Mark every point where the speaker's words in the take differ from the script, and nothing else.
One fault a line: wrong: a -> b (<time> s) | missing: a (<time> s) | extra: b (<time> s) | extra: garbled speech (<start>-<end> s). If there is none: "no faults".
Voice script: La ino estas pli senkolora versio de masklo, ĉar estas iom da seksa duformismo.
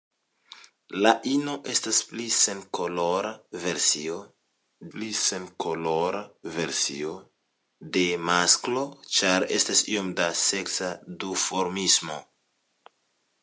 extra: pli senkolora versio (5.0 s)